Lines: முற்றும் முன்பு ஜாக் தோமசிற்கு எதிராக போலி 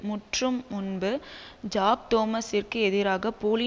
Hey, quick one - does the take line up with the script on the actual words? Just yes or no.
yes